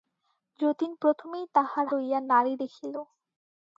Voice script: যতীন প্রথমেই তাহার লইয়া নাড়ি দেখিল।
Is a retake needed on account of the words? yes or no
no